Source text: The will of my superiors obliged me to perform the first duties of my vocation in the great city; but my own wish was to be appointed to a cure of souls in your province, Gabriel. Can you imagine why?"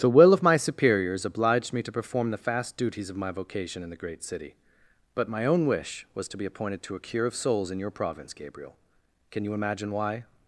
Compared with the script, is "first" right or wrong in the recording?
wrong